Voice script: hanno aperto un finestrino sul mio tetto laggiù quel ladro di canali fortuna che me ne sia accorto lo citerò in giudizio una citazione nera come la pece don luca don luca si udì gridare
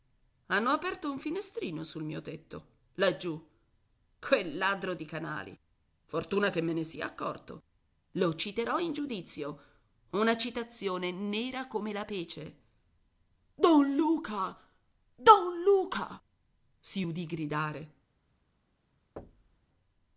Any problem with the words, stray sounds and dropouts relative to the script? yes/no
yes